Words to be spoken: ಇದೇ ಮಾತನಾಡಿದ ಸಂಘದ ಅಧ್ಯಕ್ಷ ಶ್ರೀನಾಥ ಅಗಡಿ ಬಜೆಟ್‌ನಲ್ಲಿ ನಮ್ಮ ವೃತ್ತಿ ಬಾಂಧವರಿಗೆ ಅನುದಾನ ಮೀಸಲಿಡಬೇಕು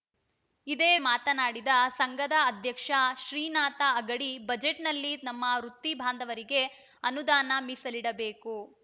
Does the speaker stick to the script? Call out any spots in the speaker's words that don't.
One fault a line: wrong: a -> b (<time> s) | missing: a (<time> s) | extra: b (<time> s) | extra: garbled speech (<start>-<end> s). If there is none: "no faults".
no faults